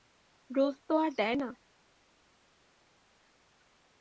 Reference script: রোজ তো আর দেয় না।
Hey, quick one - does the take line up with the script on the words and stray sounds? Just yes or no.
yes